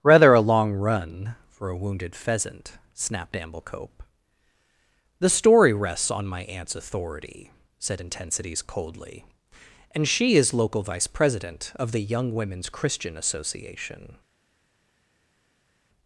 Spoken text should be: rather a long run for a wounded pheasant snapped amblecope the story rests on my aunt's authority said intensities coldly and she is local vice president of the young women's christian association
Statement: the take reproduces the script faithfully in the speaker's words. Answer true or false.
true